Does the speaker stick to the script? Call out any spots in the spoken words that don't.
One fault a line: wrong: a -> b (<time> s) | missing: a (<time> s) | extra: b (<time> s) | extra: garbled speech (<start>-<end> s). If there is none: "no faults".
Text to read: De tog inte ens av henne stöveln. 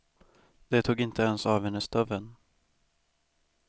no faults